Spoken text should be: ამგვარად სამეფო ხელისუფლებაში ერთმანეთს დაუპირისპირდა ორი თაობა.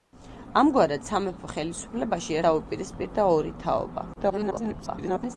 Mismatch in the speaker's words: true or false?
true